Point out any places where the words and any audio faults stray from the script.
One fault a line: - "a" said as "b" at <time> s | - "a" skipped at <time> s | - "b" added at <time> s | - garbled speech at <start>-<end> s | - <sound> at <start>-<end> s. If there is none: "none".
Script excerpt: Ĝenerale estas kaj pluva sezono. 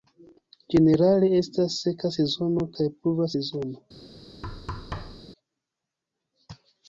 - "seka sezono" added at 1.8 s
- thud at 4.4-5.3 s